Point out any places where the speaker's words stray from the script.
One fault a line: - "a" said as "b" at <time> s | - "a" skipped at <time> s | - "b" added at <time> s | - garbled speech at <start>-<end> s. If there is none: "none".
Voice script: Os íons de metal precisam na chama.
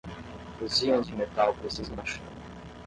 none